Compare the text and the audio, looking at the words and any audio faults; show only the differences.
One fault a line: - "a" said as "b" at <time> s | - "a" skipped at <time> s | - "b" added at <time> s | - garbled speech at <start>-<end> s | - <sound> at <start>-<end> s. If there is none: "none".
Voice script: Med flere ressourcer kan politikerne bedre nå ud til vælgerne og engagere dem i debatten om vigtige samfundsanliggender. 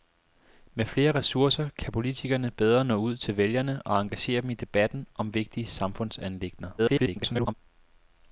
- garbled speech at 6.8-7.5 s